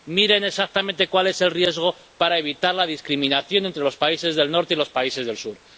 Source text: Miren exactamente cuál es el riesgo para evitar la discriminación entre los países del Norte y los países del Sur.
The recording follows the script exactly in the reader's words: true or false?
true